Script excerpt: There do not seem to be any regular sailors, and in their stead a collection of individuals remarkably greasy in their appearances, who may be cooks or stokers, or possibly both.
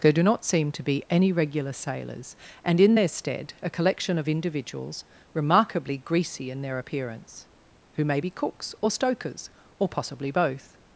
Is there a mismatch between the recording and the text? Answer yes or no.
yes